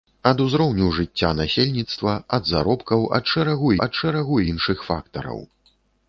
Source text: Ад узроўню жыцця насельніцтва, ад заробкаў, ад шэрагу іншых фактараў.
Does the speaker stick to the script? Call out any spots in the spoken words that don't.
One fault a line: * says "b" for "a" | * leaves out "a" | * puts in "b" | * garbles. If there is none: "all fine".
* puts in "ад шэрагу"